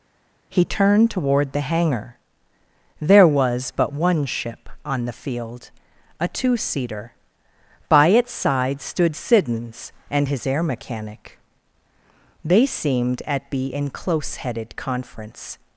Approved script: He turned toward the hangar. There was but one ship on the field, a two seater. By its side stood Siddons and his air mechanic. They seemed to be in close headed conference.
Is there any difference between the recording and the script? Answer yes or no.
yes